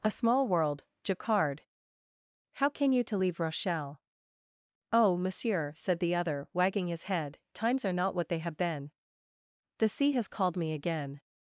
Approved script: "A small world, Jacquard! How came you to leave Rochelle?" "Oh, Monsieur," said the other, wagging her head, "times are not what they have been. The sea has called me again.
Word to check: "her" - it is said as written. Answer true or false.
false